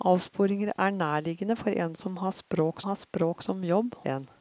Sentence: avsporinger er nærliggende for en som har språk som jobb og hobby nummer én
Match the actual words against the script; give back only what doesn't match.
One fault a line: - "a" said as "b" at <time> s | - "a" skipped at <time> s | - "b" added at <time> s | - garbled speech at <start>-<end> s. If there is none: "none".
- "har språk" added at 2.8 s
- "og hobby nummer" skipped at 4.0 s